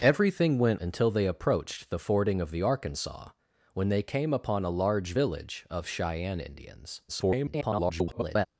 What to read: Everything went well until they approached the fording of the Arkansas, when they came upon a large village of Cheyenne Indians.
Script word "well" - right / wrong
wrong